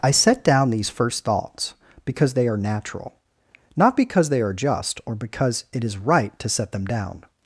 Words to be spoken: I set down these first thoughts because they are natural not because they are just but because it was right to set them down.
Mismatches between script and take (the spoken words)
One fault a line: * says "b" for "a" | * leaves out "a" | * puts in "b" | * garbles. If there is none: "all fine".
* says "or" for "but"
* says "is" for "was"